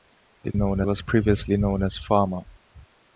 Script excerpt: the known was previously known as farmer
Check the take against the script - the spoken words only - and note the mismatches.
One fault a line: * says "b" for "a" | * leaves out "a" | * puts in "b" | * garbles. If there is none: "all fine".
all fine